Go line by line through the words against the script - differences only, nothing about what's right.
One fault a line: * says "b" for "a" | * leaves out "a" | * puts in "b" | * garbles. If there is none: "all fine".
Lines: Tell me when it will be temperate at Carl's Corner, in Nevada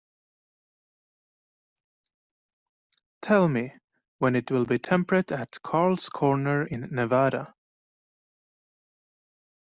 all fine